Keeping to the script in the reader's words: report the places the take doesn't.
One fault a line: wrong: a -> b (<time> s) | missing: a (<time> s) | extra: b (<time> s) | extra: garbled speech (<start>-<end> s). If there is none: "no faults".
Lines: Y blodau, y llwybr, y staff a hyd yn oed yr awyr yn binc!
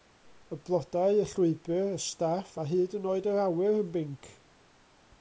no faults